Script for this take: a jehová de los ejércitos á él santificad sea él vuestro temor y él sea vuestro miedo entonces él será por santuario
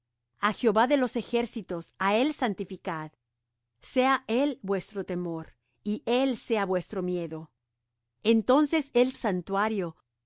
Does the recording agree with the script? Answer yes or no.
no